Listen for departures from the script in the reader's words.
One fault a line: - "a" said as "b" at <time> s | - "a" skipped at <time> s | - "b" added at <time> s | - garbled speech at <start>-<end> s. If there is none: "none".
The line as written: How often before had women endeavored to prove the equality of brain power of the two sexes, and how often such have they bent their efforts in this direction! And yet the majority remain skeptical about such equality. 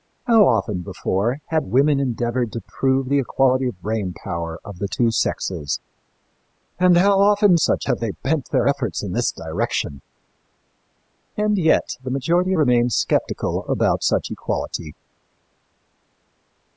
none